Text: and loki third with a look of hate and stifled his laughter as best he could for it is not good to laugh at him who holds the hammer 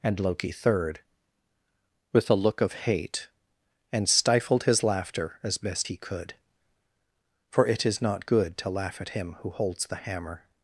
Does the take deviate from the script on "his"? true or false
false